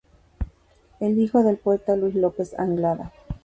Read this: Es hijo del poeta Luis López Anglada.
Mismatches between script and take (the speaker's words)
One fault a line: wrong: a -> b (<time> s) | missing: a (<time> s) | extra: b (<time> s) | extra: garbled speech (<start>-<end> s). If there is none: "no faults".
no faults